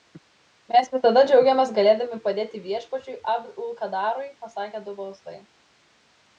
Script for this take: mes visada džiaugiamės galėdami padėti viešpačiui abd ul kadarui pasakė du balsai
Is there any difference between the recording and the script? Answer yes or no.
no